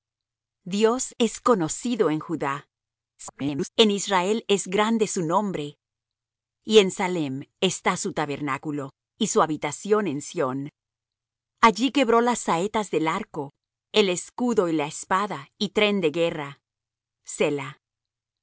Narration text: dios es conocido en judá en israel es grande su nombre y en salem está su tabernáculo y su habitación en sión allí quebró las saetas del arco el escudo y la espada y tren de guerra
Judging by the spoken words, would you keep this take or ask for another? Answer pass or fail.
fail